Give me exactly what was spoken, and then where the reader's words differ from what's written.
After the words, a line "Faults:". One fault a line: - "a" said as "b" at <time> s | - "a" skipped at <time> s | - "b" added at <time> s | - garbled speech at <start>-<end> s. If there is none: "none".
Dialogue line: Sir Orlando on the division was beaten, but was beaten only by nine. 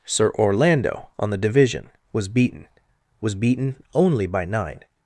Sir Orlando on the division was beaten, was beaten only by nine.
Faults:
- "but" skipped at 2.7 s